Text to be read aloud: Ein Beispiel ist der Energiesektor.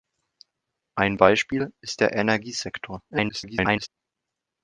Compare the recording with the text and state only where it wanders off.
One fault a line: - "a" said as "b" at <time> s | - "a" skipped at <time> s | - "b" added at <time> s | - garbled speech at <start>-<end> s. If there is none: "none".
- garbled speech at 3.1-3.9 s